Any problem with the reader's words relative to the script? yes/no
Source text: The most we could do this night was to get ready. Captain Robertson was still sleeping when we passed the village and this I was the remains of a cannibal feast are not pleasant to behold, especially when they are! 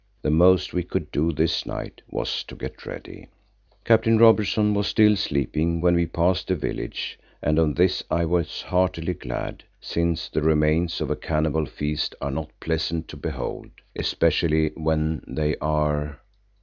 yes